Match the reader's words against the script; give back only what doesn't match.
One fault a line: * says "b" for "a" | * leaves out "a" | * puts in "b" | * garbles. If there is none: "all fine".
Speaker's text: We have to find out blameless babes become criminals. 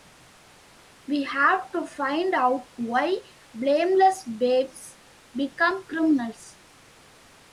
* puts in "why"